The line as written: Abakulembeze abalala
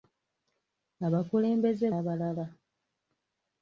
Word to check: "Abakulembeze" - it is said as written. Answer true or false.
true